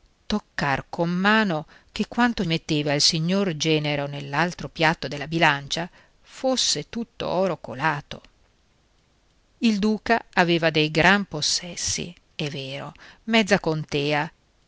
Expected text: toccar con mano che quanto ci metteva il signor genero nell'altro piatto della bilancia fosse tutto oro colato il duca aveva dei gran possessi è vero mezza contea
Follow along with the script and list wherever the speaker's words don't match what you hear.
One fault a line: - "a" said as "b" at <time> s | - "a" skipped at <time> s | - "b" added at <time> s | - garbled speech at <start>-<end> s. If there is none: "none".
- "ci" skipped at 2.4 s